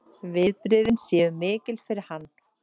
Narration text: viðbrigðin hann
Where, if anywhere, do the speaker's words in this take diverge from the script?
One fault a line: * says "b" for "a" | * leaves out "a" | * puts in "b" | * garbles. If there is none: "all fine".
* puts in "séu mikil fyrir"